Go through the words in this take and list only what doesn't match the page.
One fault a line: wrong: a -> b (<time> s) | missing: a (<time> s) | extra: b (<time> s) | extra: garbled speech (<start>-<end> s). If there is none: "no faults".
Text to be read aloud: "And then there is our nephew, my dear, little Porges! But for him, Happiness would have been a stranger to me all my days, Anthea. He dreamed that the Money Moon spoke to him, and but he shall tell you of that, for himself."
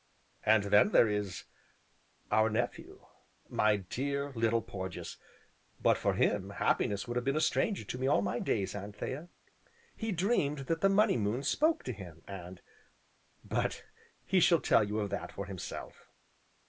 no faults